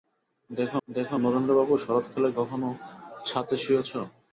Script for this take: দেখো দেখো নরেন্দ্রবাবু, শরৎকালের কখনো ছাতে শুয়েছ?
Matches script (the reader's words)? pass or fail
pass